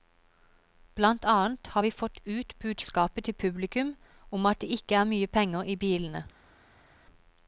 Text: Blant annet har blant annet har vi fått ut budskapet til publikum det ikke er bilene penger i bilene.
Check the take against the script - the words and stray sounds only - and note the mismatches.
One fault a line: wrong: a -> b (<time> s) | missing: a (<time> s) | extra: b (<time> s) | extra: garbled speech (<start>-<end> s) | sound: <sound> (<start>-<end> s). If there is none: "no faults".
missing: blant annet har (1.8 s)
extra: om at (4.3 s)
wrong: bilene -> mye (5.1 s)